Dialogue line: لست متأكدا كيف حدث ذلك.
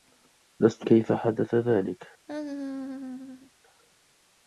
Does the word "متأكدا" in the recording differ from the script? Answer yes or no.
yes